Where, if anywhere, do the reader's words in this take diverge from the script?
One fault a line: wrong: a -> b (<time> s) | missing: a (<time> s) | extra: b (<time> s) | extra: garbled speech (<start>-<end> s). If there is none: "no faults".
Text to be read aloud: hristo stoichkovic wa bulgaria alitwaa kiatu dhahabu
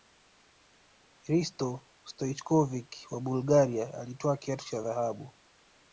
extra: cha (4.7 s)